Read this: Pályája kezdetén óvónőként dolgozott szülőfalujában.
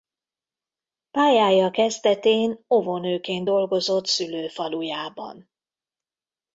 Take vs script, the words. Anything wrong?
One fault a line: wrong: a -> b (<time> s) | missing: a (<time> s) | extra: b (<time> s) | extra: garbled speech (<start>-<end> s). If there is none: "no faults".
no faults